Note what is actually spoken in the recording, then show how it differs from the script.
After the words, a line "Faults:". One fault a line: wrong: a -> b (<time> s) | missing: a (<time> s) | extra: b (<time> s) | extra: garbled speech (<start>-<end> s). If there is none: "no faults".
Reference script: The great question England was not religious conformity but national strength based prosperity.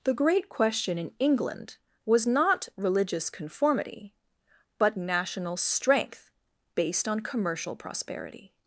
The great question in England was not religious conformity but national strength based on commercial prosperity.
Faults:
extra: in (1.0 s)
extra: on commercial (7.1 s)